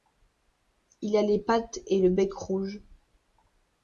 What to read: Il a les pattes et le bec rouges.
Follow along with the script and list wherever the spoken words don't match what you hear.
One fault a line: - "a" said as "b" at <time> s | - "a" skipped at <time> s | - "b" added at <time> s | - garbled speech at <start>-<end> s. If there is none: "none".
none